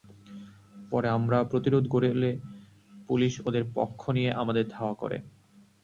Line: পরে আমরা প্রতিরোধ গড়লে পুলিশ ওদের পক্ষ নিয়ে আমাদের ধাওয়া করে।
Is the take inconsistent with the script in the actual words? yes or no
no